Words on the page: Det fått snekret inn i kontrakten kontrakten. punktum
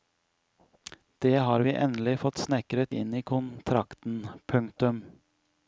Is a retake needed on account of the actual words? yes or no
yes